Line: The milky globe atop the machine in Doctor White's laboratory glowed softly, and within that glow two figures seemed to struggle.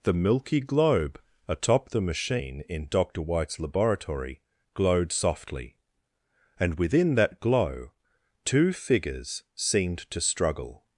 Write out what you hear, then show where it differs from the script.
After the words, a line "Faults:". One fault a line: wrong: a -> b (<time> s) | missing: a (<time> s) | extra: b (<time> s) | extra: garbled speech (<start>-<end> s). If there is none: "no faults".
The milky globe atop the machine in Doctor White's laboratory glowed softly, and within that glow two figures seemed to struggle.
Faults:
no faults